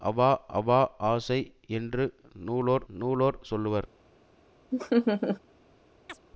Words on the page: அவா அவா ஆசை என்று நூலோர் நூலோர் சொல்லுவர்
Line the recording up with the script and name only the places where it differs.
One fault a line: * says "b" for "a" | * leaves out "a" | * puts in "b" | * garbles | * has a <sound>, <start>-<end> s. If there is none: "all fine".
* has a laugh, 4.7-5.4 s
* has a chirp, 6.1-6.2 s